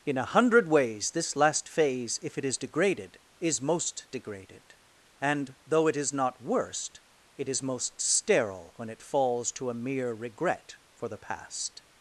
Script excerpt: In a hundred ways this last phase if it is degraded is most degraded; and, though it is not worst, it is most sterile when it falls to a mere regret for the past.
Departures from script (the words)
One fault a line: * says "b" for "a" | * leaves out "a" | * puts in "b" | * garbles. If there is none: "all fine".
all fine